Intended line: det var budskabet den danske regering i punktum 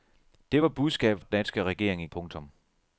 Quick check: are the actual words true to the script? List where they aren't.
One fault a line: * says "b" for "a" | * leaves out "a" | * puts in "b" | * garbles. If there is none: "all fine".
all fine